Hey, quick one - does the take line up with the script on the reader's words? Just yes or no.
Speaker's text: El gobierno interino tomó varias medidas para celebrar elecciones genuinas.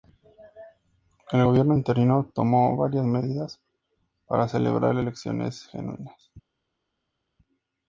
yes